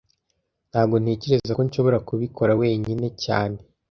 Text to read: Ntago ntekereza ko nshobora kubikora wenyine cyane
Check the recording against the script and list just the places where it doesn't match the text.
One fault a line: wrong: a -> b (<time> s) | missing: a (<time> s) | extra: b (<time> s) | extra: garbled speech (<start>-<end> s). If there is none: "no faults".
no faults